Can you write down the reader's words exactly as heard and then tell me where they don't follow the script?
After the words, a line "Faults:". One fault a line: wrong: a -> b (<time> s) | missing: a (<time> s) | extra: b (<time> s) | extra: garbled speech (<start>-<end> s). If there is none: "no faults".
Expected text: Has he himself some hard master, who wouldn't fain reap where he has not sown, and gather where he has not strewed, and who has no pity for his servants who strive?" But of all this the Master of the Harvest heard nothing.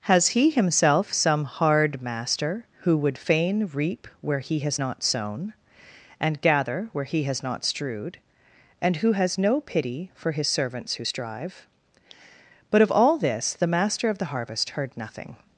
Has he himself some hard master, who would fain reap where he has not sown, and gather where he has not strewed, and who has no pity for his servants who strive?" But of all this the Master of the Harvest heard nothing.
Faults:
wrong: wouldn't -> would (3.0 s)